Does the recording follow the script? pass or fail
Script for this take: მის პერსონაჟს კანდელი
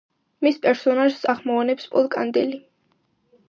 fail